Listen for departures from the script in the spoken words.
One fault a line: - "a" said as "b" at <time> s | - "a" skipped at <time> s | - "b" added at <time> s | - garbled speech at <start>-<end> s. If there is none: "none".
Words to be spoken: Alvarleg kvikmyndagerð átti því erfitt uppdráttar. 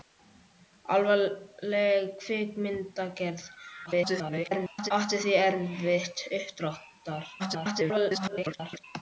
- garbled speech at 3.9-4.9 s
- garbled speech at 7.4-8.8 s